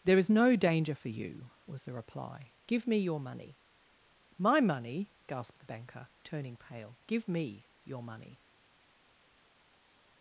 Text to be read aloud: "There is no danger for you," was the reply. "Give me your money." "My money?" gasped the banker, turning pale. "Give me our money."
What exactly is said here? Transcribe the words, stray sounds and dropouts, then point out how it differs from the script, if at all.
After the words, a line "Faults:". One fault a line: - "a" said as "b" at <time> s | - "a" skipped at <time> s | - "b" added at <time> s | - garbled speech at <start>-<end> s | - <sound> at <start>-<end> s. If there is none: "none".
"There is no danger for you," was the reply. "Give me your money." "My money?" gasped the banker, turning pale. "Give me your money."
Faults:
- "our" said as "your" at 7.8 s